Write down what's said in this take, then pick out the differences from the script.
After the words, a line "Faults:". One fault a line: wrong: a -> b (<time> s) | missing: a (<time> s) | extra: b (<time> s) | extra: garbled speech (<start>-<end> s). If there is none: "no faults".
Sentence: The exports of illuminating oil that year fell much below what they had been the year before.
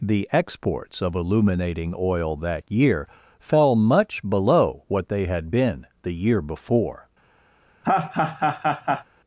The exports of illuminating oil that year fell much below what they had been the year before.
Faults:
no faults